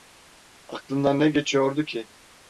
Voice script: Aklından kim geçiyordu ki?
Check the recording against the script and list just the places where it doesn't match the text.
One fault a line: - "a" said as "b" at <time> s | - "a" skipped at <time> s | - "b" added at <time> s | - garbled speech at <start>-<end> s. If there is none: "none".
- "kim" said as "ne" at 1.2 s